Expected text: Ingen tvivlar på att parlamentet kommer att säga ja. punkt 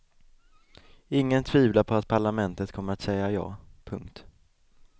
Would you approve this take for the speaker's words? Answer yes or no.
yes